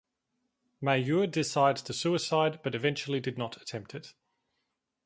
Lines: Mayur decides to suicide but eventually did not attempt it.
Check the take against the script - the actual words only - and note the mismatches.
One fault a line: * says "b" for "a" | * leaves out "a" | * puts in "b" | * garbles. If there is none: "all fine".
all fine